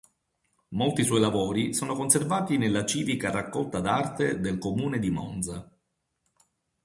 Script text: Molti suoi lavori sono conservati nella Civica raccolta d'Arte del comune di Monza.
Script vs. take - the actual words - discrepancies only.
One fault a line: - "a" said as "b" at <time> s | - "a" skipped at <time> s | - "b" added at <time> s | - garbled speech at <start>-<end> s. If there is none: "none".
none